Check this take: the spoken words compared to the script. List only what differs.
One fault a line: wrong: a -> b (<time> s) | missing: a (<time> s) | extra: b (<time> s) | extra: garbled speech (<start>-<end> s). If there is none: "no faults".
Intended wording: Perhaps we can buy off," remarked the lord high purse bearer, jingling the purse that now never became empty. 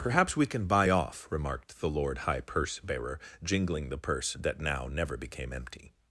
no faults